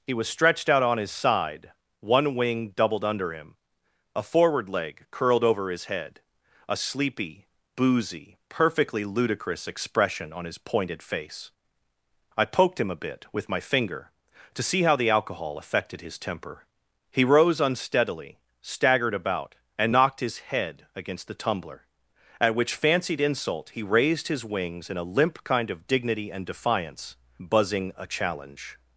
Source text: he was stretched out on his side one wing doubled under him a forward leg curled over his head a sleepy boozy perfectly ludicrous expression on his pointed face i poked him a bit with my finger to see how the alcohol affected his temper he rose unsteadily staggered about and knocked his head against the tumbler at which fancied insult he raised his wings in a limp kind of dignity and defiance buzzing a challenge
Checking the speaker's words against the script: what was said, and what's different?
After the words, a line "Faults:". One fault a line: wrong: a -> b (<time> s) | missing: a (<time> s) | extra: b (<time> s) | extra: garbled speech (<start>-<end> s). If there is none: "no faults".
he was stretched out on his side one wing doubled under him a forward leg curled over his head a sleepy boozy perfectly ludicrous expression on his pointed face i poked him a bit with my finger to see how the alcohol affected his temper he rose unsteadily staggered about and knocked his head against the tumbler at which fancied insult he raised his wings in a limp kind of dignity and defiance buzzing a challenge
Faults:
no faults